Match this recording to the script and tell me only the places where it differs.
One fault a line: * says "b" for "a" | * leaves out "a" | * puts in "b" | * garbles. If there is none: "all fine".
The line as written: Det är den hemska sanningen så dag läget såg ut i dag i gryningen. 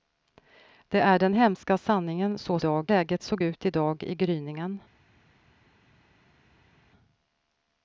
all fine